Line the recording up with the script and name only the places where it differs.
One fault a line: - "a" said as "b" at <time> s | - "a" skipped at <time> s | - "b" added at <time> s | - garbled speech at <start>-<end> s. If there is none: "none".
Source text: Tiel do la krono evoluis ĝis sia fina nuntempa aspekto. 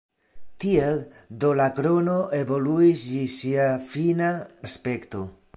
- "nuntempa" skipped at 4.3 s